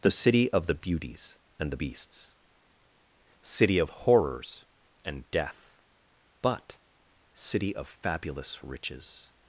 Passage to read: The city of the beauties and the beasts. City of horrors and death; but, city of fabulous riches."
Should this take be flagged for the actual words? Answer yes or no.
no